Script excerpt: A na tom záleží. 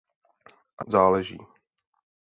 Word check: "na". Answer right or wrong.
wrong